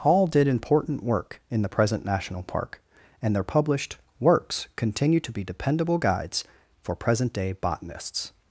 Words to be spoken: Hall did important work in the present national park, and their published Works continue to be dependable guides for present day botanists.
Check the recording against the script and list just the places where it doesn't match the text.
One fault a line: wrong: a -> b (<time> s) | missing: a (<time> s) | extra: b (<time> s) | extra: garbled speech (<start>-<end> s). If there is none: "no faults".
no faults